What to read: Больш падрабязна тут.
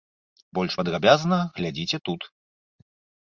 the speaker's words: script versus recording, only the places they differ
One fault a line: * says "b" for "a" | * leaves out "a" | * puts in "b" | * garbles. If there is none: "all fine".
* puts in "глядзіце"